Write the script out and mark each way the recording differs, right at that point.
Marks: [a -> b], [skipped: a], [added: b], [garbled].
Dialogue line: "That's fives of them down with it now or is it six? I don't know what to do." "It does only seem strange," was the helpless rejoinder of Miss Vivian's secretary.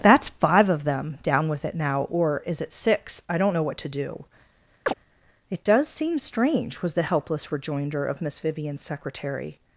"That's [fives -> five] of them down with it now or is it six? I don't know what to do." "It does [skipped: only] seem strange," was the helpless rejoinder of Miss Vivian's secretary.